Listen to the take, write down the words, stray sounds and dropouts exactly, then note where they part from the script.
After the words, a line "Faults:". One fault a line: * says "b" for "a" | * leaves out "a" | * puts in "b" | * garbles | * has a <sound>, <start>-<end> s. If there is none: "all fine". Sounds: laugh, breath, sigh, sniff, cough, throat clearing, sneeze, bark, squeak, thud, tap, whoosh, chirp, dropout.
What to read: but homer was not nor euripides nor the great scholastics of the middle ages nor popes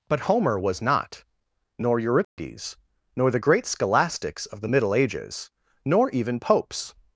but homer was not nor euripides nor the great scholastics of the middle ages nor even popes
Faults:
* has a dropout, 2.2-2.4 s
* puts in "even"